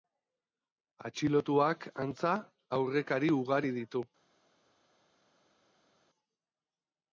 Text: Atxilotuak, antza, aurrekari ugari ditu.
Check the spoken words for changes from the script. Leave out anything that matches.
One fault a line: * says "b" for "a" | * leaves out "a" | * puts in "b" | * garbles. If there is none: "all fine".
all fine